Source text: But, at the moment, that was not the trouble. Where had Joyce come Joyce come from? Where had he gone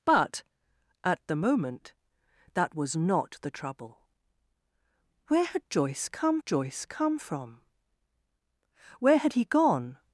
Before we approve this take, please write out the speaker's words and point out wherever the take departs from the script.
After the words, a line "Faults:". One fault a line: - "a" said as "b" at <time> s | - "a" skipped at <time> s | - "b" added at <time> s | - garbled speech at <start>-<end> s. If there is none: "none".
But, at the moment, that was not the trouble. Where had Joyce come Joyce come from? Where had he gone
Faults:
none